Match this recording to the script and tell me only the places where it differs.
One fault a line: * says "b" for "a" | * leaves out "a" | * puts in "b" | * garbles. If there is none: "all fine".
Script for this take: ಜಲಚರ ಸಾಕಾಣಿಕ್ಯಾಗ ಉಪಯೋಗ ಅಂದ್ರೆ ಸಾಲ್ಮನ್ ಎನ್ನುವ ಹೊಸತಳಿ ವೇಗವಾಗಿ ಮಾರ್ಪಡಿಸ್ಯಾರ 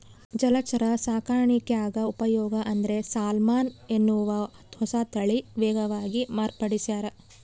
all fine